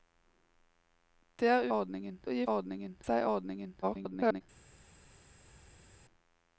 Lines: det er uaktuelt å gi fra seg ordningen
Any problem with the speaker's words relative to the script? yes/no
yes